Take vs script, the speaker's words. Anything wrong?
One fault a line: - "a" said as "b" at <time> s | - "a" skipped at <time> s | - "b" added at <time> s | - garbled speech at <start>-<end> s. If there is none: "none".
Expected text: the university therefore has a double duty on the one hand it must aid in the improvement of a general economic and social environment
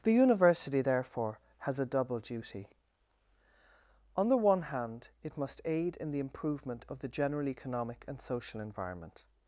- "a" said as "the" at 7.0 s